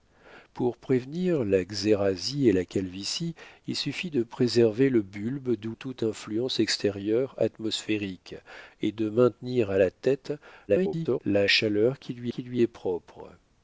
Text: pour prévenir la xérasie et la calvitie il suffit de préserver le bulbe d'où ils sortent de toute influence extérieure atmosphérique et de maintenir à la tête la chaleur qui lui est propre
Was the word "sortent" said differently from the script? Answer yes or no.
yes